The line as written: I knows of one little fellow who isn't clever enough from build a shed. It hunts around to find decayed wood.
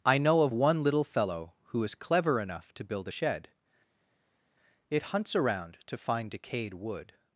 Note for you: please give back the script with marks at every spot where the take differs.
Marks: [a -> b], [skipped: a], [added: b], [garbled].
I [knows -> know] of one little fellow who [isn't -> is] clever enough [from -> to] build a shed. It hunts around to find decayed wood.